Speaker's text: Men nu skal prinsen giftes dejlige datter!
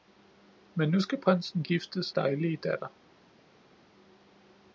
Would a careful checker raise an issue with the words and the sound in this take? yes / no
no